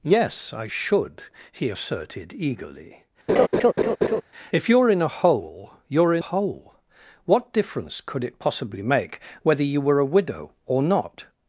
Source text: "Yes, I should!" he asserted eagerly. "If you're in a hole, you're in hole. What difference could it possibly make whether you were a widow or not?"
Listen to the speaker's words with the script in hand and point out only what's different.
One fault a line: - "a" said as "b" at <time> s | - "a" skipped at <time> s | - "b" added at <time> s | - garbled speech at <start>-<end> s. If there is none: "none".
none